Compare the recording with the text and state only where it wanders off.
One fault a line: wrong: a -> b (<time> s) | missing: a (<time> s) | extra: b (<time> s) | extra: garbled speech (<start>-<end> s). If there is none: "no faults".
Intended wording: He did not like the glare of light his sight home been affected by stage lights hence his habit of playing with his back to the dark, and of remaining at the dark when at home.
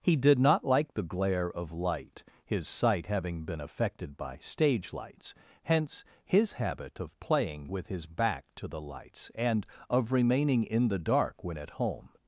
wrong: home -> having (3.0 s)
wrong: dark -> lights (8.8 s)
wrong: at -> in (10.6 s)